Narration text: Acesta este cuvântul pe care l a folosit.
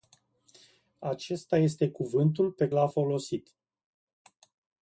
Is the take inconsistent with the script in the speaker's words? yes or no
yes